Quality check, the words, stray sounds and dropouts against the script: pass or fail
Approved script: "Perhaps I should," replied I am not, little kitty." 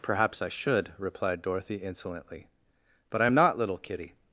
fail